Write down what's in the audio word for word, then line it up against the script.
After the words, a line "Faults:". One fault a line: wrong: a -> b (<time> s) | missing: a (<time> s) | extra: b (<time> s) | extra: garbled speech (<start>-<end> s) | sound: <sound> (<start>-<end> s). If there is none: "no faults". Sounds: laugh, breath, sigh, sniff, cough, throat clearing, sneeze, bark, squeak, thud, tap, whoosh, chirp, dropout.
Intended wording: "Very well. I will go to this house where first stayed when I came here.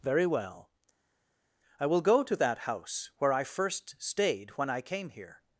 "Very well. I will go to that house where I first stayed when I came here.
Faults:
wrong: this -> that (2.4 s)
extra: I (3.3 s)